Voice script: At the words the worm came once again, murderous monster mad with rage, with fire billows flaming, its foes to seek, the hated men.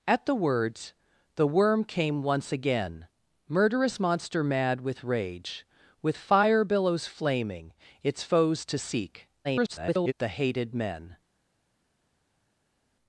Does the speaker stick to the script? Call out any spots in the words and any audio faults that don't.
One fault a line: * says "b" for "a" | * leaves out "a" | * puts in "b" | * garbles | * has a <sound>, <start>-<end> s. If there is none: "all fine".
* garbles